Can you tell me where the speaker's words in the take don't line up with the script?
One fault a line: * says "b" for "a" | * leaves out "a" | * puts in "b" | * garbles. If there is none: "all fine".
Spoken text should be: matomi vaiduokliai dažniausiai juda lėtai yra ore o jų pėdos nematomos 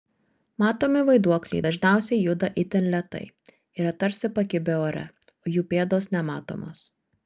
* puts in "itin"
* puts in "tarsi pakibę"